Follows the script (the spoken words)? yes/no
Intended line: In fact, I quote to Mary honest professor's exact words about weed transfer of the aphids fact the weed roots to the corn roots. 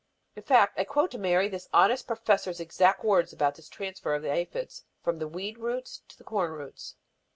no